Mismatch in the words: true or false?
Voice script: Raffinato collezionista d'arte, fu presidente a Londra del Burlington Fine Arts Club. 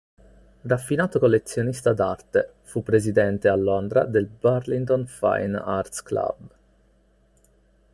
false